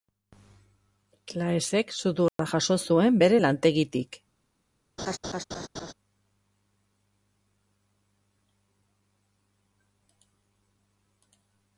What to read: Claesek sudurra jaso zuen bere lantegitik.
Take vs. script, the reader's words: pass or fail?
pass